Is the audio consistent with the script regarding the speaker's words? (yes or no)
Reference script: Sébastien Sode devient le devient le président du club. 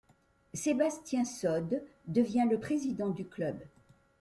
no